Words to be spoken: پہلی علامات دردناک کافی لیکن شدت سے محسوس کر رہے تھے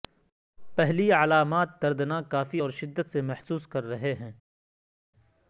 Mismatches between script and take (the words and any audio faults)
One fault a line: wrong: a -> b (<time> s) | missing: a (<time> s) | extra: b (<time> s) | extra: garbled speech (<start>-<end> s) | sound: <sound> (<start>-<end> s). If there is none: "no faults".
wrong: لیکن -> اور (2.6 s)
wrong: تھے -> ہیں (4.1 s)